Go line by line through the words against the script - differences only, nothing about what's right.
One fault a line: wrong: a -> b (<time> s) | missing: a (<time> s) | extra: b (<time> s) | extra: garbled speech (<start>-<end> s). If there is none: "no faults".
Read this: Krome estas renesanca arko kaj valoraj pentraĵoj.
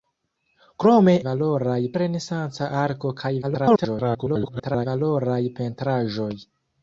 wrong: estas -> valoraj (1.3 s)
extra: garbled speech (3.4-4.9 s)